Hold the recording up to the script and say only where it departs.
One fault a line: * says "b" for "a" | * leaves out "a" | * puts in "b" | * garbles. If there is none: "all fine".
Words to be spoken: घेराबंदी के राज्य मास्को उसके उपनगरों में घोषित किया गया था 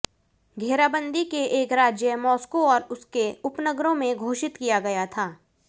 * puts in "एक"
* puts in "और"